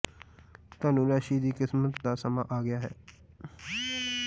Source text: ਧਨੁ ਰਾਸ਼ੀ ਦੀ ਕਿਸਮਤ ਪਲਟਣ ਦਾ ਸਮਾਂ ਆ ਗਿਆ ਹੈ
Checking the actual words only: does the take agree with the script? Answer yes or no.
no